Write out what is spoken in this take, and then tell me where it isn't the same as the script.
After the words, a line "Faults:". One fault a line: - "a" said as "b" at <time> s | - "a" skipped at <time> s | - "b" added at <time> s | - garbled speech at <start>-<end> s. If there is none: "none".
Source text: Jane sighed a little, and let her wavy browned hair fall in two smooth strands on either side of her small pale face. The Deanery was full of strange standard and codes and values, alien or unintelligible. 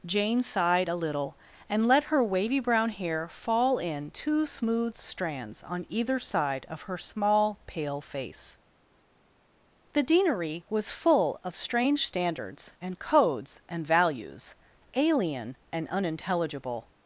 Jane sighed a little, and let her wavy brown hair fall in two smooth strands on either side of her small pale face. The Deanery was full of strange standards and codes and values, alien and unintelligible.
Faults:
- "browned" said as "brown" at 2.6 s
- "standard" said as "standards" at 12.0 s
- "or" said as "and" at 15.7 s